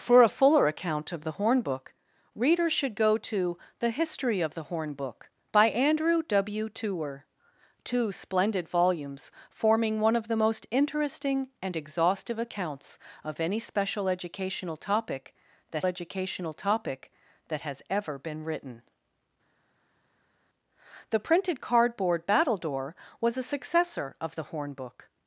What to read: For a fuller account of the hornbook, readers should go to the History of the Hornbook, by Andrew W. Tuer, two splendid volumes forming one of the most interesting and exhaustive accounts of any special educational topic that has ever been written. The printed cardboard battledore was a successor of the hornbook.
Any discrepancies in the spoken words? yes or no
yes